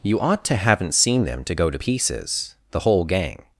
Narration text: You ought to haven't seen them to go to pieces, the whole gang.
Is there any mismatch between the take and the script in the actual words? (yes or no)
no